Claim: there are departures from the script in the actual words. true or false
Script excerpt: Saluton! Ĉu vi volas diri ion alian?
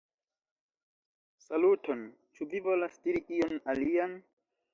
false